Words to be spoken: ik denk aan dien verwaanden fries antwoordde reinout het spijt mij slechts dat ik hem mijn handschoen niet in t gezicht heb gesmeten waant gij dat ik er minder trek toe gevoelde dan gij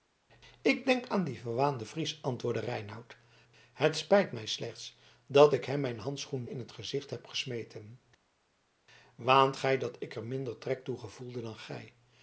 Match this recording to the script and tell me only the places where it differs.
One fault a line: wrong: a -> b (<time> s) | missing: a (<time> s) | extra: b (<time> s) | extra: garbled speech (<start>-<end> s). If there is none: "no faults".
missing: niet (6.5 s)